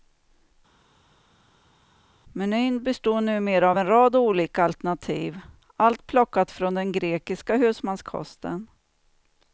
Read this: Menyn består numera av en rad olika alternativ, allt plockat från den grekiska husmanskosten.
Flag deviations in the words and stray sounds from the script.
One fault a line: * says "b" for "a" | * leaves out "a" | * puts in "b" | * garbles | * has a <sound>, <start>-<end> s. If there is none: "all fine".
all fine